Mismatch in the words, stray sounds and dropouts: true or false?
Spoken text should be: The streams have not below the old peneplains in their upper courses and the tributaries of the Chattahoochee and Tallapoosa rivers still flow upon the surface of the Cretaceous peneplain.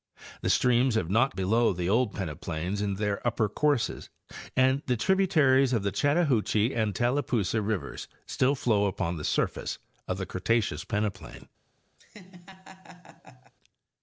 true